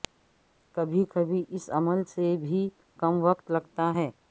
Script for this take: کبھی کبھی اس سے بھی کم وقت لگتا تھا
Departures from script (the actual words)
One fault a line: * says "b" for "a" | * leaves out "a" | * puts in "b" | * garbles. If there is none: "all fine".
* puts in "عمل"
* says "ہے" for "تھا"